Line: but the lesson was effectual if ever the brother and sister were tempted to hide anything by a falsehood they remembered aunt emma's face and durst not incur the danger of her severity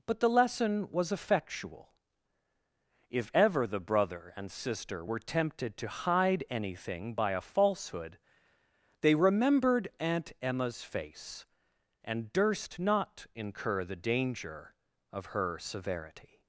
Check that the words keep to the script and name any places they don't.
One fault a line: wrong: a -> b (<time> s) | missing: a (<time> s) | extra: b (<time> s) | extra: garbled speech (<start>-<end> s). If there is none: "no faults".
no faults